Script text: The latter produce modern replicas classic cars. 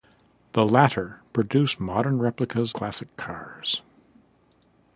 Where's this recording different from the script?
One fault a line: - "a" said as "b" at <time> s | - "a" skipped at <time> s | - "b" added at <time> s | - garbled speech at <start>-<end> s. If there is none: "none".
none